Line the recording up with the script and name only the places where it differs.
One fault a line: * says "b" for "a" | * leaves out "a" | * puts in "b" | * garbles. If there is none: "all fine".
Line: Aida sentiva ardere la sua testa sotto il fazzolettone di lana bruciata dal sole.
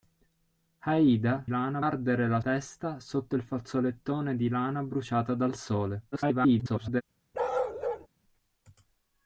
* says "lana" for "sentiva"
* leaves out "sua"
* garbles